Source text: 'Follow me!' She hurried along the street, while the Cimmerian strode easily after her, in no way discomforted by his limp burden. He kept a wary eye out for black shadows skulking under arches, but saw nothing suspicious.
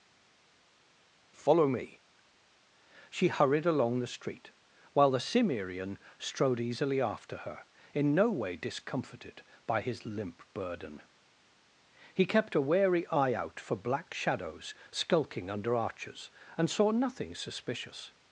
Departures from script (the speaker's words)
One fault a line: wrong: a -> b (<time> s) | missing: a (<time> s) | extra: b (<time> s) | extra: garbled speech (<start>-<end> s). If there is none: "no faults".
wrong: but -> and (16.6 s)